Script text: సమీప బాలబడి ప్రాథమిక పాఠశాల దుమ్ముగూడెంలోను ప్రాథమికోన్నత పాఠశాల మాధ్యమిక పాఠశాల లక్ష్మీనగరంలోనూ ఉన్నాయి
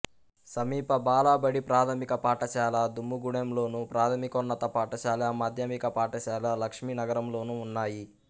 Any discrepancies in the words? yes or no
no